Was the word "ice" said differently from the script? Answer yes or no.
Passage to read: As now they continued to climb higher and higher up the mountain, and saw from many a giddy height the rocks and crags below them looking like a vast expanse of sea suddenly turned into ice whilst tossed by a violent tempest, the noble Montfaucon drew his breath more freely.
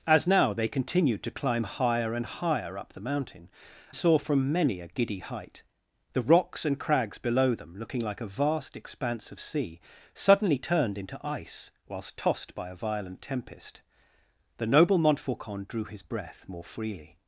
no